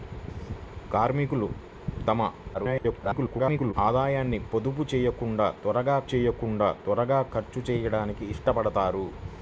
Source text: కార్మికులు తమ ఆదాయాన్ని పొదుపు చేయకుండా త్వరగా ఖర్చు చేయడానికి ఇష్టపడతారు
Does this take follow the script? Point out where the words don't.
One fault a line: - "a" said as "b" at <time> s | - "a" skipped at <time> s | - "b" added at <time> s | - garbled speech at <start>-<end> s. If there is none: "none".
- garbled speech at 2.5-3.7 s
- "చేయకుండా త్వరగా" added at 6.1 s